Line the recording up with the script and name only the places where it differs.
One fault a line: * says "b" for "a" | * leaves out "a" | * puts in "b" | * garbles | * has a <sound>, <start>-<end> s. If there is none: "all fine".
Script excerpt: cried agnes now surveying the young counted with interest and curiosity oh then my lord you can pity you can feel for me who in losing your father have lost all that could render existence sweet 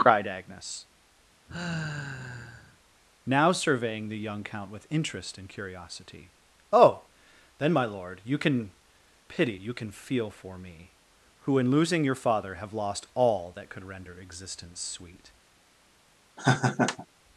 * has a sigh, 1.5-2.8 s
* says "count" for "counted"
* has a laugh, 16.4-17.1 s